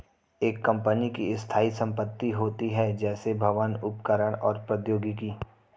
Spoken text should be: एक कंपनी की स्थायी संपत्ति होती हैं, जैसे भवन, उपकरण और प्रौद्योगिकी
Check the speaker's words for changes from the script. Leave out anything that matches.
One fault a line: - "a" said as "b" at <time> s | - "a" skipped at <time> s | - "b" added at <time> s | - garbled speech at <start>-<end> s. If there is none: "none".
none